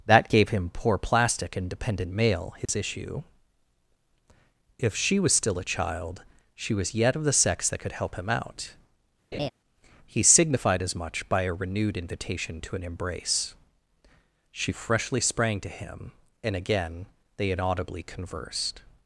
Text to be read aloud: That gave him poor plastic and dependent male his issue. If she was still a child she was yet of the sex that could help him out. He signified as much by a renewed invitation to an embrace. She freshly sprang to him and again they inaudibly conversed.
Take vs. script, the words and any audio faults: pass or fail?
fail